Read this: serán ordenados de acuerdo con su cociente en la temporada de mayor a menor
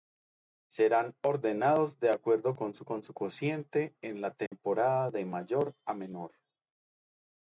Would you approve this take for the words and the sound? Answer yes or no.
no